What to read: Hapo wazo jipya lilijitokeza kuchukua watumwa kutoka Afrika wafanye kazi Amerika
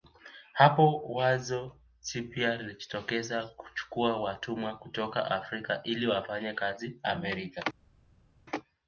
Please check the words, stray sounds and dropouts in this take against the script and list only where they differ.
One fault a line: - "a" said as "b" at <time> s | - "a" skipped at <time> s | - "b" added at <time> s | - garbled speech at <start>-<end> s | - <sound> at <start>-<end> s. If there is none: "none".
- "ili" added at 5.8 s